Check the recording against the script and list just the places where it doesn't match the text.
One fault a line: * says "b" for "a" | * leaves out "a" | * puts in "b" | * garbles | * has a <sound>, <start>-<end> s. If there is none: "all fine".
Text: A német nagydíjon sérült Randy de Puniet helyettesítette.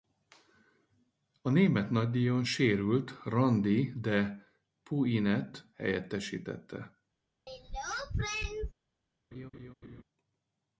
* has a throat clearing, 7.5-8.7 s
* has a laugh, 9.3-10.0 s